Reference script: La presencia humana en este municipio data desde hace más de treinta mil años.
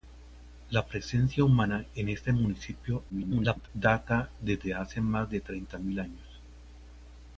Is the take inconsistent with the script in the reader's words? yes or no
yes